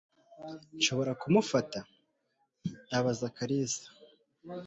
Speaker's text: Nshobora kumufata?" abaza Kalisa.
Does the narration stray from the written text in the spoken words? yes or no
no